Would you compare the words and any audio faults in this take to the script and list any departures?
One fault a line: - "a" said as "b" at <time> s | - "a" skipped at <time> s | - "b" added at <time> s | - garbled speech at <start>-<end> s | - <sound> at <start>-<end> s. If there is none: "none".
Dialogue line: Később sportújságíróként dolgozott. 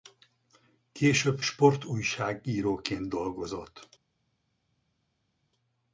none